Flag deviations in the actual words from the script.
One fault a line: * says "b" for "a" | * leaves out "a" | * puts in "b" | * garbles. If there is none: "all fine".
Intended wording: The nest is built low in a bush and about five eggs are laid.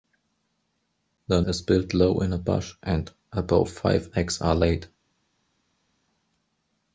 * leaves out "nest"